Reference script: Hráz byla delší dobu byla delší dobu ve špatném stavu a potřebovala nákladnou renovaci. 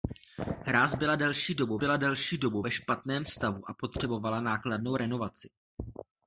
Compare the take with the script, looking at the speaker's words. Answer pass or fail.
pass